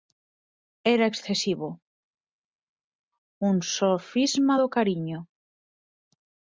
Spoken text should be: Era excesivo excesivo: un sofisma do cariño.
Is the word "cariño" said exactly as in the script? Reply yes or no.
yes